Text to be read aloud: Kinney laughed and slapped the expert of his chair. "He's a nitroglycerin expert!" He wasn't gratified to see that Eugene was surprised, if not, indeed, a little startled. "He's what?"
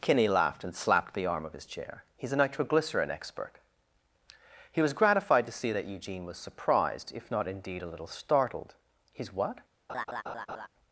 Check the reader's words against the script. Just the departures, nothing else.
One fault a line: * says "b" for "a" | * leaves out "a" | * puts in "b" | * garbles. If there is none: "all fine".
* says "arm" for "expert"
* says "was" for "wasn't"